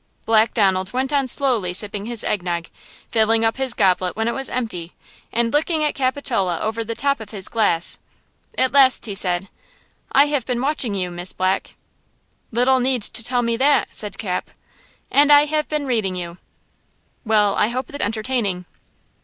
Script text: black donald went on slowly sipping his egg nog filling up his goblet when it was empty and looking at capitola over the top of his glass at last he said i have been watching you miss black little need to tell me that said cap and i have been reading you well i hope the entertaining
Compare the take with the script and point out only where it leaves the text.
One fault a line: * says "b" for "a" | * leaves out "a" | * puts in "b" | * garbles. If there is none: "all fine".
all fine